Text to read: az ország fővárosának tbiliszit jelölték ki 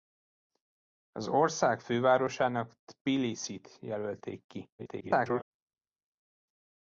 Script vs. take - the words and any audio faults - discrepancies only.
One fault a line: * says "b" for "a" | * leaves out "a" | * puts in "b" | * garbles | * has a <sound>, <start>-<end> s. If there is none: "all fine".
* garbles